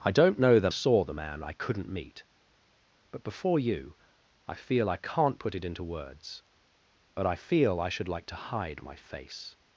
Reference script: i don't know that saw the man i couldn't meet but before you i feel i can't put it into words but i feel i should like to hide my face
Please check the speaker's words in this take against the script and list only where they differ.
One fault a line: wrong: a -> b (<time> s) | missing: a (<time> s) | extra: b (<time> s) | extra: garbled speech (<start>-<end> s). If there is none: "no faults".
no faults